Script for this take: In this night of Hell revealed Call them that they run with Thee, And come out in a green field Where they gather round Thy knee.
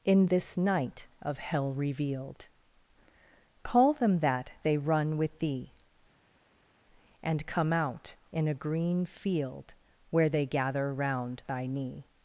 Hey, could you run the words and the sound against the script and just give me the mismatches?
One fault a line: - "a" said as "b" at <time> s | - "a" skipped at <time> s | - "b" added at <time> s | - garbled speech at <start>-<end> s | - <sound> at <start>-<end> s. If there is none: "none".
none